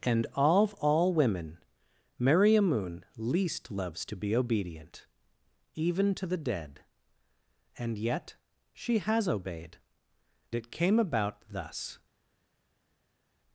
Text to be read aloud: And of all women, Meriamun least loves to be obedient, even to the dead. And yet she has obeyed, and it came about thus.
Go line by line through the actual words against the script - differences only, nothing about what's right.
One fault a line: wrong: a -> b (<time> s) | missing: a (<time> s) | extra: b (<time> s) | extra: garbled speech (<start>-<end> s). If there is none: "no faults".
missing: and (9.8 s)